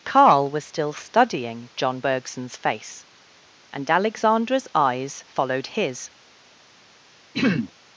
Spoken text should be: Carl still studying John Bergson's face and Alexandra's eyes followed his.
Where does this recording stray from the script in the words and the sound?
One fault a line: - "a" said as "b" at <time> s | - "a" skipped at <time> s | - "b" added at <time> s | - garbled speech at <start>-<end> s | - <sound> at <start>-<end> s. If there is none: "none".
- "was" added at 0.5 s
- throat clearing at 7.3-7.7 s